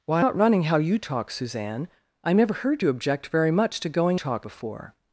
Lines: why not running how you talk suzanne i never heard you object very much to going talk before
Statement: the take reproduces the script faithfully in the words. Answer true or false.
true